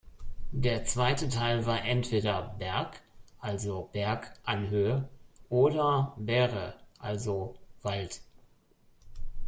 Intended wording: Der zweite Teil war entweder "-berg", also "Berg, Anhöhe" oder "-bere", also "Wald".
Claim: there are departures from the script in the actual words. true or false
false